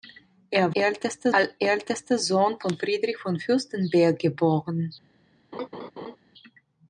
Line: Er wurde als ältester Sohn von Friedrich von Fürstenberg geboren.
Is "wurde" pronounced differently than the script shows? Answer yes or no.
yes